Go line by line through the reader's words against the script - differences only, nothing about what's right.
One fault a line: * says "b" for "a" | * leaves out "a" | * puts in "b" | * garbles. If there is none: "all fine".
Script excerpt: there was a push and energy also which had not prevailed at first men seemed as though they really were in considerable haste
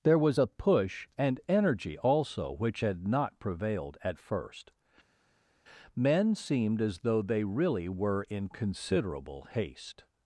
all fine